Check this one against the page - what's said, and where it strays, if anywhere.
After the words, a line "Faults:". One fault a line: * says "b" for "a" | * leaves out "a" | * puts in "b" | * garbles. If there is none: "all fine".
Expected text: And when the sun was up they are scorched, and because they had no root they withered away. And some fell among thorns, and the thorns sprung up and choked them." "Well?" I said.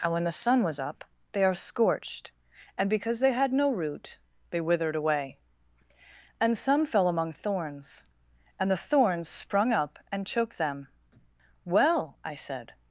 And when the sun was up they are scorched, and because they had no root they withered away. And some fell among thorns, and the thorns sprung up and choked them." "Well?" I said.
Faults:
all fine